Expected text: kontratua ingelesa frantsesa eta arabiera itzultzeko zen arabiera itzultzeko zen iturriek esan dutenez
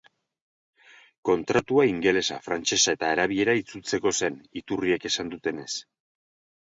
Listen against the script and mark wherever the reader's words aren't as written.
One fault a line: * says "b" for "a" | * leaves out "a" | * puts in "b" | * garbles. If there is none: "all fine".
* leaves out "arabiera itzultzeko zen"